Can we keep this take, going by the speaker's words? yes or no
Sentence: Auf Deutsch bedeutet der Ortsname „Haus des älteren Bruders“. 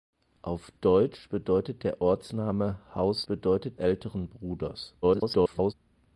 no